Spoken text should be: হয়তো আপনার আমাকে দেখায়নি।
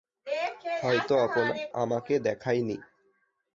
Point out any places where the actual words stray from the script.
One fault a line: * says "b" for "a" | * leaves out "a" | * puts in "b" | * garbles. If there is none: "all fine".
all fine